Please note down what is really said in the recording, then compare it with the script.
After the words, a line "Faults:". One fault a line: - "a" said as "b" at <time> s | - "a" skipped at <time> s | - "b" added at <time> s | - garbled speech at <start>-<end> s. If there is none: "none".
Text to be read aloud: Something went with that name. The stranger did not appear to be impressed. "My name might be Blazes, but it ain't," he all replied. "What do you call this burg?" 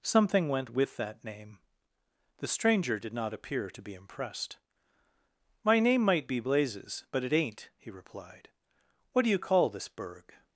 Something went with that name. The stranger did not appear to be impressed. "My name might be Blazes, but it ain't," he replied. "What do you call this burg?"
Faults:
- "all" skipped at 7.9 s